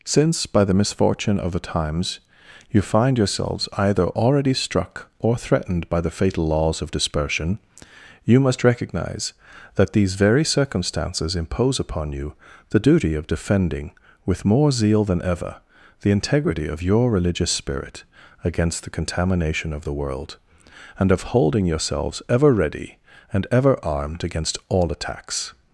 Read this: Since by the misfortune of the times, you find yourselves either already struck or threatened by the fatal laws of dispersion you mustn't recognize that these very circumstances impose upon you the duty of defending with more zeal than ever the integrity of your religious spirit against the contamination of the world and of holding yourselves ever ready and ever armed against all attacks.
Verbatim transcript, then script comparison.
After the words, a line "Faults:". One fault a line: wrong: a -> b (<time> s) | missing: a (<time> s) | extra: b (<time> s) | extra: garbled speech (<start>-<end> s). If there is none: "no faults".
Since by the misfortune of the times, you find yourselves either already struck or threatened by the fatal laws of dispersion you must recognize that these very circumstances impose upon you the duty of defending with more zeal than ever the integrity of your religious spirit against the contamination of the world and of holding yourselves ever ready and ever armed against all attacks.
Faults:
wrong: mustn't -> must (8.4 s)